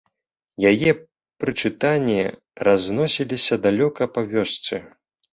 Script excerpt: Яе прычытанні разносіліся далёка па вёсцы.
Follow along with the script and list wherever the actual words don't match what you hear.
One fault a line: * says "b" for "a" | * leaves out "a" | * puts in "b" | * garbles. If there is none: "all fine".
all fine